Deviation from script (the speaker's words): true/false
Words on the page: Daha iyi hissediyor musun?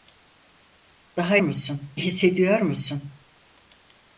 true